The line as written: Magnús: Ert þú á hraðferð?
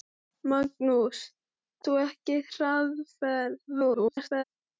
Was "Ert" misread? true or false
true